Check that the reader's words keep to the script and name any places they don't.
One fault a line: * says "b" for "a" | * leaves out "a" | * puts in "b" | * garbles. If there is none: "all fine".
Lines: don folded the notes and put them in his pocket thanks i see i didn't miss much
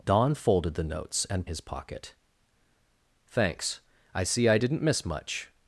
* leaves out "put them in"